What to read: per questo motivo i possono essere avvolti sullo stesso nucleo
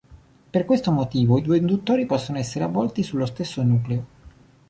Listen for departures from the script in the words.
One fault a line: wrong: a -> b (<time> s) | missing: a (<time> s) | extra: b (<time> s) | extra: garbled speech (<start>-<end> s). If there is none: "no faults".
extra: due induttori (1.4 s)